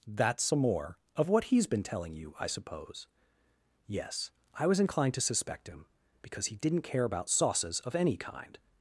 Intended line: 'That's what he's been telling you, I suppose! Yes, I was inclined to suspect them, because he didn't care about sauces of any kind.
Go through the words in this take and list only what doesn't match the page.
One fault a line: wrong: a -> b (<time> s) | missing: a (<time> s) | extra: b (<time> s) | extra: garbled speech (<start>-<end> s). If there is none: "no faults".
extra: some more of (0.4 s)
wrong: them -> him (5.7 s)